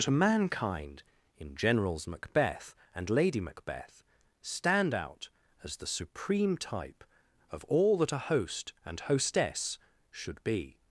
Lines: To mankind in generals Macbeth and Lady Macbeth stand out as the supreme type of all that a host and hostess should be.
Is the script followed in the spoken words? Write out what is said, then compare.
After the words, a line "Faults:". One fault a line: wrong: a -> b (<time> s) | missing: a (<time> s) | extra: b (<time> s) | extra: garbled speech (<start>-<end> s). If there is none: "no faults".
To mankind in generals Macbeth and Lady Macbeth stand out as the supreme type of all that a host and hostess should be.
Faults:
no faults